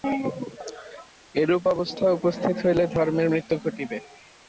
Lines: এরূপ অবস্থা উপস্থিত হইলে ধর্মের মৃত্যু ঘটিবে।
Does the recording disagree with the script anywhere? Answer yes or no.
no